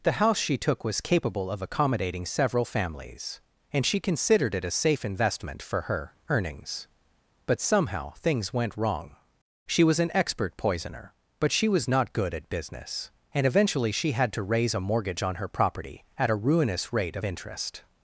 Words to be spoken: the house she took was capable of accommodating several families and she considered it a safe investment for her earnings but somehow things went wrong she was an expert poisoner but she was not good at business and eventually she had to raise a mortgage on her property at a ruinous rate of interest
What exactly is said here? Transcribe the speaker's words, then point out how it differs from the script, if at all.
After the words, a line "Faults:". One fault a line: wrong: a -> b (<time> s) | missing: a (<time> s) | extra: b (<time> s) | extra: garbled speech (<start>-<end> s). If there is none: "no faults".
the house she took was capable of accommodating several families and she considered it a safe investment for her earnings but somehow things went wrong she was an expert poisoner but she was not good at business and eventually she had to raise a mortgage on her property at a ruinous rate of interest
Faults:
no faults